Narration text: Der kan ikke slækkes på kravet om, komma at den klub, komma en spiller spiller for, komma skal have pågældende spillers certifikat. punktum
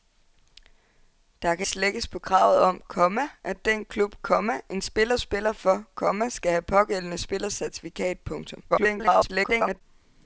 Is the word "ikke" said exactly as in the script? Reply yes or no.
no